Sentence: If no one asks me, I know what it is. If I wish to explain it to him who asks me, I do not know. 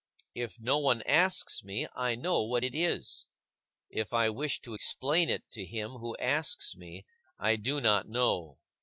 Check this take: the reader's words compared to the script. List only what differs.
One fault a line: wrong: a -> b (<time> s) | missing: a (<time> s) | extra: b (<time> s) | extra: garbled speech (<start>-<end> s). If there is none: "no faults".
no faults